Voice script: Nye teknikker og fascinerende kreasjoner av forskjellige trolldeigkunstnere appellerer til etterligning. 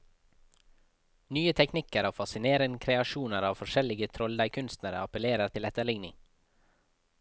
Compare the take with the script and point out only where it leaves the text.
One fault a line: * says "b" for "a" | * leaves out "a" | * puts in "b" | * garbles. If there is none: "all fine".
all fine